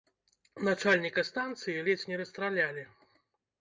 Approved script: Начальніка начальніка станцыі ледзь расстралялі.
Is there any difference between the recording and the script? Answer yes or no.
yes